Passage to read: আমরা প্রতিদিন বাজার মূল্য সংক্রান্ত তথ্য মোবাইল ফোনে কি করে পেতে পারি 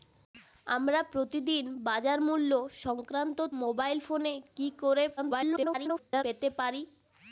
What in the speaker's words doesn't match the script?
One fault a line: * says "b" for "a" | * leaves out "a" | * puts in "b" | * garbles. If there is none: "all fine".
* leaves out "তথ্য"
* garbles